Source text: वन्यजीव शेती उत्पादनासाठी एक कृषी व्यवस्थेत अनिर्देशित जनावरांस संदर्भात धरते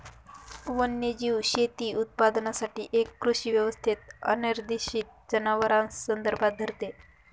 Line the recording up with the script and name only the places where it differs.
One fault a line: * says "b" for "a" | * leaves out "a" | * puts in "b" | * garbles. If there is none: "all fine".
all fine